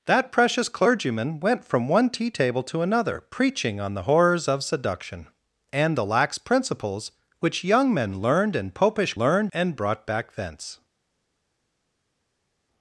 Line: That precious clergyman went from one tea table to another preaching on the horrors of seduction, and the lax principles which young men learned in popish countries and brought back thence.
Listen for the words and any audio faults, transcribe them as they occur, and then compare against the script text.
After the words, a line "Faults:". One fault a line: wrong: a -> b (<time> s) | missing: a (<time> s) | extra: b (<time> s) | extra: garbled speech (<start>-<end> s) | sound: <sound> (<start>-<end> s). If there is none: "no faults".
That precious clergyman went from one tea table to another preaching on the horrors of seduction, and the lax principles which young men learned in popish learned and brought back thence.
Faults:
wrong: countries -> learned (9.2 s)